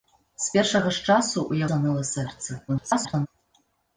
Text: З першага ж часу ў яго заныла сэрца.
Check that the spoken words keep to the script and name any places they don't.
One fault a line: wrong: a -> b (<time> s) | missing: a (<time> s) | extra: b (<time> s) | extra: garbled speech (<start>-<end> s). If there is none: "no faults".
missing: яго (1.7 s)
extra: garbled speech (2.7-3.3 s)